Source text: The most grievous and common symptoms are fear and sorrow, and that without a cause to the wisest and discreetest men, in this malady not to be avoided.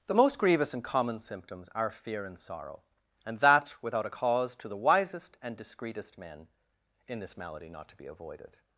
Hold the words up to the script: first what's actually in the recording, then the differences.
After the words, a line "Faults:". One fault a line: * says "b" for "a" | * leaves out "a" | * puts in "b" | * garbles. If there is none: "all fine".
The most grievous and common symptoms are fear and sorrow, and that without a cause to the wisest and discreetest men, in this malady not to be avoided.
Faults:
all fine